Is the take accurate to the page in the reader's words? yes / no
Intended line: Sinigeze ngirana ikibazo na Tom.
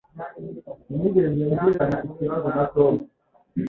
yes